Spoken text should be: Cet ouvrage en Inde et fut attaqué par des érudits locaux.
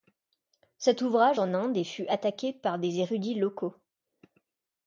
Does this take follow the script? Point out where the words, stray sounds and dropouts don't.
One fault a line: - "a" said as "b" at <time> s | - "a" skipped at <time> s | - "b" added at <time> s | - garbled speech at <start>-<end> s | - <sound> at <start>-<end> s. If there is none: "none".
none